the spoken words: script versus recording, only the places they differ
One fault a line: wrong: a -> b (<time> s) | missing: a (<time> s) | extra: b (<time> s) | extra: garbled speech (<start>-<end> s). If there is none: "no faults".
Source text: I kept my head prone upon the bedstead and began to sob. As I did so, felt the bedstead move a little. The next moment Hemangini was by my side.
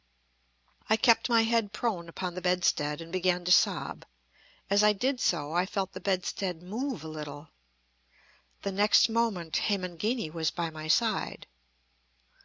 extra: I (5.5 s)